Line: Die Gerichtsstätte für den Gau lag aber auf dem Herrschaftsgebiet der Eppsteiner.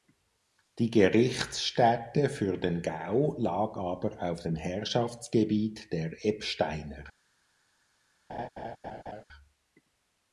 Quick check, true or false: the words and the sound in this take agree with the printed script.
false